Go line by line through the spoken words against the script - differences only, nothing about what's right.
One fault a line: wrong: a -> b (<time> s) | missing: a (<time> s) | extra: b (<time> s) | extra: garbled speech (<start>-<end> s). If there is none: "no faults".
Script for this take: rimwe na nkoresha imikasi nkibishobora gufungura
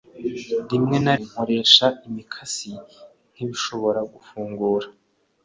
no faults